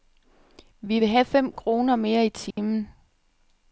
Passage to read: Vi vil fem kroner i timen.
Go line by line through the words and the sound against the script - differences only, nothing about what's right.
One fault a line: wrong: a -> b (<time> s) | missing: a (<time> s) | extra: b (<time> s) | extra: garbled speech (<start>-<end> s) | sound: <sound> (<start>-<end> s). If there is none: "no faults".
extra: have (1.1 s)
extra: mere (2.0 s)
sound: dropout (2.5-2.6 s)